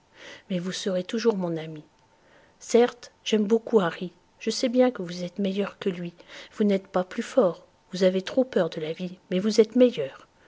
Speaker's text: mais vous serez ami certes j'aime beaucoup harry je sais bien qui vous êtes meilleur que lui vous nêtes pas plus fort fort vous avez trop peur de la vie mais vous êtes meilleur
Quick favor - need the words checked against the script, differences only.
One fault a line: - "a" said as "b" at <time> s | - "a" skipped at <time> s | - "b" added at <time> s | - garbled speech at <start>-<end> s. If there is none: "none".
- "toujours mon" added at 1.0 s
- "qui" said as "que" at 4.9 s
- "fort" skipped at 7.7 s